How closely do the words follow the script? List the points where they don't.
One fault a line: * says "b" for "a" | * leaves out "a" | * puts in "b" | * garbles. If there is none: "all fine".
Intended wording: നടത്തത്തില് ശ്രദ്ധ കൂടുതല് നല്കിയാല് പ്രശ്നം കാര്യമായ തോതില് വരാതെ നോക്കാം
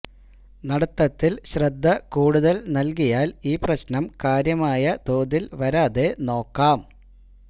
* puts in "ഈ"